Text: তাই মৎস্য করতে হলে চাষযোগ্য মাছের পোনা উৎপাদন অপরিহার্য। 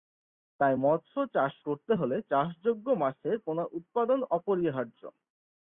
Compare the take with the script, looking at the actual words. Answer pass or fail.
fail